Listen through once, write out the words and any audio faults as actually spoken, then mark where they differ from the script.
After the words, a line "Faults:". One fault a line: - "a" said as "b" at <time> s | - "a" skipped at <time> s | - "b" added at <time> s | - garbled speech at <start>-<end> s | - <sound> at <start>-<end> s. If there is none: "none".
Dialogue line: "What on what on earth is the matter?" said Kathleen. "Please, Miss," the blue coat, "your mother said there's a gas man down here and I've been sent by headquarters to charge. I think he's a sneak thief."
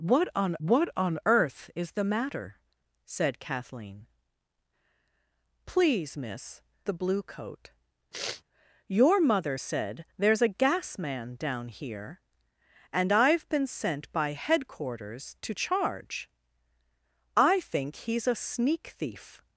"What on what on earth is the matter?" said Kathleen. "Please, Miss," the blue coat, "your mother said there's a gas man down here and I've been sent by headquarters to charge. I think he's a sneak thief."
Faults:
- sniff at 8.1-8.4 s